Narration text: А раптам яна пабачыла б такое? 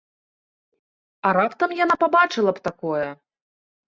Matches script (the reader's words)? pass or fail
pass